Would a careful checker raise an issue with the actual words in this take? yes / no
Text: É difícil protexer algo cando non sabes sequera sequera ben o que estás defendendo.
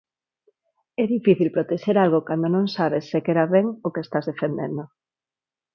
yes